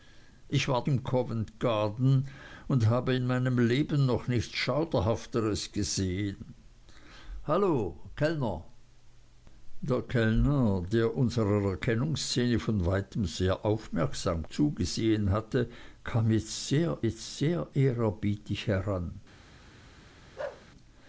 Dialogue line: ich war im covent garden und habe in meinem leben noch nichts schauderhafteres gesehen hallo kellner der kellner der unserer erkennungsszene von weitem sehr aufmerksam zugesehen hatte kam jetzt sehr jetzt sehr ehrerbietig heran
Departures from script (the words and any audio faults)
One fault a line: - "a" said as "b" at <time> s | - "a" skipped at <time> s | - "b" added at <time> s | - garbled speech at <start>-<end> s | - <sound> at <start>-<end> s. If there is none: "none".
- bark at 20.4-20.7 s